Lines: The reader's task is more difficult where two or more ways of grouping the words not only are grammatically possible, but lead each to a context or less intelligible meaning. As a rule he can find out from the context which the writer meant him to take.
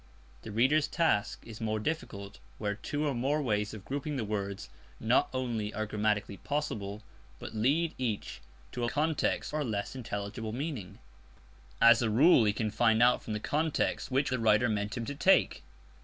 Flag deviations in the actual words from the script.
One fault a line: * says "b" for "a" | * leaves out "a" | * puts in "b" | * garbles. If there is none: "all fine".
all fine